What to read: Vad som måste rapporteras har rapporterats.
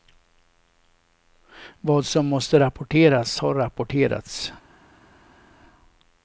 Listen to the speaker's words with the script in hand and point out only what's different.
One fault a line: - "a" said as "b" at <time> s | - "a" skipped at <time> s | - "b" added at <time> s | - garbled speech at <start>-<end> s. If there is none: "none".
none